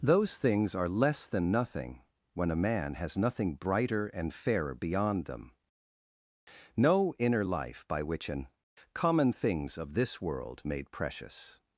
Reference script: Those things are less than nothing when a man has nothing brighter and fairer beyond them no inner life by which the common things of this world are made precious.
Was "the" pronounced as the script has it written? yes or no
no